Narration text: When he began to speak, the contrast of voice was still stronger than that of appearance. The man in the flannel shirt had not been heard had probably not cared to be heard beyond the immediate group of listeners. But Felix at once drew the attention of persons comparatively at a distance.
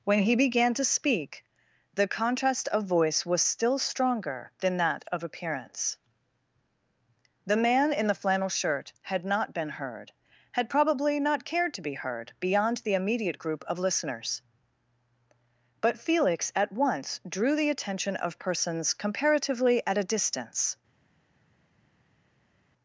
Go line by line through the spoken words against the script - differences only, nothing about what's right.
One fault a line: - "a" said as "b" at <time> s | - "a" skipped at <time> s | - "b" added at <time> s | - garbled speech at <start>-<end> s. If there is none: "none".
none